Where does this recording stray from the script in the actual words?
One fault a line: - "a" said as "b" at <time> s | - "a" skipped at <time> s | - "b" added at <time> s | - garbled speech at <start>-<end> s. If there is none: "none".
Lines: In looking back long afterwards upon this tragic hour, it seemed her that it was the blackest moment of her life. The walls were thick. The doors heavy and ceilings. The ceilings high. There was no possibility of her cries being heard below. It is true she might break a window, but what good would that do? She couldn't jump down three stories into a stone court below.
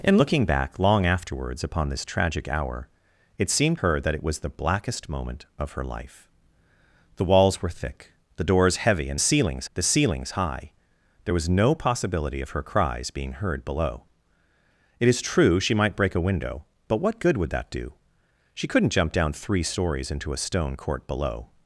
none